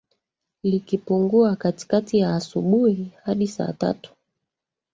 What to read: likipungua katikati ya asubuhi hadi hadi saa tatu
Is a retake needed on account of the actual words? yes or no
yes